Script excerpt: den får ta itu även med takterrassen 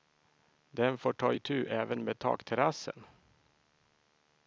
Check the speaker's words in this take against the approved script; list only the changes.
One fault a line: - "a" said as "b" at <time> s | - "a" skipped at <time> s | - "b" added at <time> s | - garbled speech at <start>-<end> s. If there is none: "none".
none